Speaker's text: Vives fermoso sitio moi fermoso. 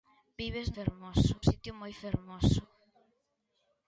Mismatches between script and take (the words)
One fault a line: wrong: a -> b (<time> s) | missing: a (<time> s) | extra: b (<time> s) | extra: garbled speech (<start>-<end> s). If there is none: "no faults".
no faults